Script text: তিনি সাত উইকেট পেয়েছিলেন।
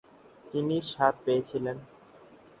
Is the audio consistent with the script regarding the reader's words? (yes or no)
no